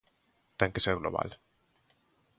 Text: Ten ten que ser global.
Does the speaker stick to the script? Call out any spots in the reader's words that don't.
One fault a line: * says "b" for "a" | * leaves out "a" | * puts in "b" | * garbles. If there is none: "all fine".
* leaves out "ten"